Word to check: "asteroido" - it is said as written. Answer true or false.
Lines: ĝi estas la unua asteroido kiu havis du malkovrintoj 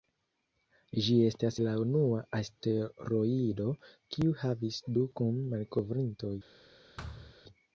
true